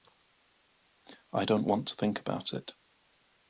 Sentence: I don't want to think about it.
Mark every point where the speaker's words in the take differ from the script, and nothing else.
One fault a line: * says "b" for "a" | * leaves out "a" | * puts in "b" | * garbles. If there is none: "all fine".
all fine